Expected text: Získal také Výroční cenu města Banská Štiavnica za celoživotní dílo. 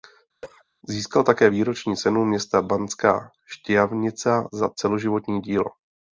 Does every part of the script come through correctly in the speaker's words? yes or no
yes